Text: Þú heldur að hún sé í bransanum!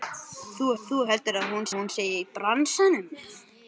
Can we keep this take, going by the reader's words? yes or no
no